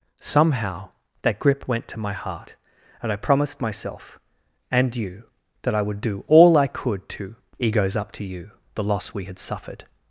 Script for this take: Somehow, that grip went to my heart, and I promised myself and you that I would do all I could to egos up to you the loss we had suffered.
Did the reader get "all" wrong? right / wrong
right